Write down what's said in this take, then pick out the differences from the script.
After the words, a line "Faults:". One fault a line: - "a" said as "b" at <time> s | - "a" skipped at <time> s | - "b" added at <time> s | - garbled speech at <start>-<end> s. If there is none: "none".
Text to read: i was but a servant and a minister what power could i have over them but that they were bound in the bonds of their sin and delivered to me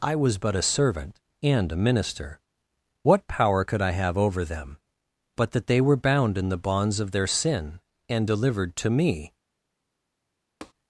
i was but a servant and a minister what power could i have over them but that they were bound in the bonds of their sin and delivered to me
Faults:
none